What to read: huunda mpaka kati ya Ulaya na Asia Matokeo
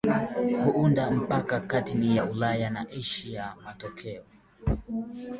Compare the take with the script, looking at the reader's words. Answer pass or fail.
pass